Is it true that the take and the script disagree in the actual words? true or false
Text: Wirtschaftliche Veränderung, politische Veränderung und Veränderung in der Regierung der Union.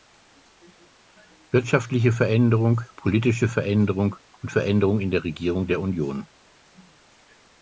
false